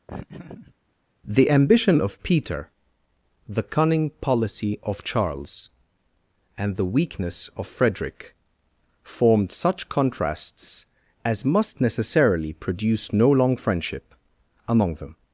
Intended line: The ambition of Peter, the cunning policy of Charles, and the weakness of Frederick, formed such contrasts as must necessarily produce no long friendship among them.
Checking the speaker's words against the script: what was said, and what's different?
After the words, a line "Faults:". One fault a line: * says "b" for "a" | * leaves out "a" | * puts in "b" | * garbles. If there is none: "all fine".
The ambition of Peter, the cunning policy of Charles, and the weakness of Frederick, formed such contrasts as must necessarily produce no long friendship among them.
Faults:
all fine